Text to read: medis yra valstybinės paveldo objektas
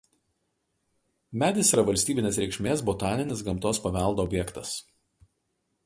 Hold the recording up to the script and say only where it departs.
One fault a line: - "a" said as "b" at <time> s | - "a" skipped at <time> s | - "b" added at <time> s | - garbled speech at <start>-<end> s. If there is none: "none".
- "reikšmės botaninis gamtos" added at 2.4 s